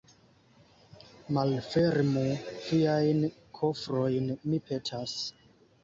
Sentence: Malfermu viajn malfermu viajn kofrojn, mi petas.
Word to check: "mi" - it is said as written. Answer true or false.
true